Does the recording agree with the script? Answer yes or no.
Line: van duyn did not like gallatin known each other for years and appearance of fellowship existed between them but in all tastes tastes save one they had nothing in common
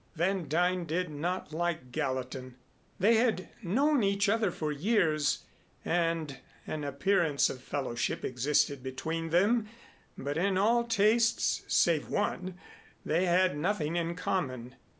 no